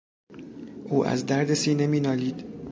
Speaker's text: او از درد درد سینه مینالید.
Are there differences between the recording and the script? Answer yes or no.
yes